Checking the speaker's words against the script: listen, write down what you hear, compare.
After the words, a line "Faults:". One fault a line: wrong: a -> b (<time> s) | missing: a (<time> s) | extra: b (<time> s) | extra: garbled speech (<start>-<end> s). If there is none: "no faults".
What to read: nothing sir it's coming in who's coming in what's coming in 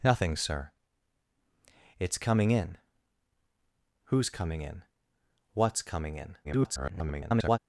nothing sir it's coming in who's coming in what's coming in [garbled]
Faults:
extra: garbled speech (6.4-7.6 s)